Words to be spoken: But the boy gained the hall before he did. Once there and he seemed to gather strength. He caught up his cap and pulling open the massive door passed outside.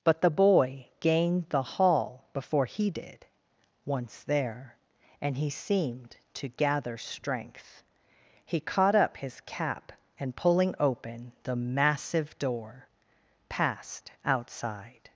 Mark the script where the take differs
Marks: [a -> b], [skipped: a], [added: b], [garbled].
But the boy gained the hall before he did. Once there and he seemed to gather strength. He caught up his cap and pulling open the massive door passed outside.